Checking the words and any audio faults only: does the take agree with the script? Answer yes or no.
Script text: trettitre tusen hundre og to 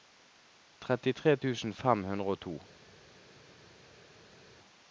no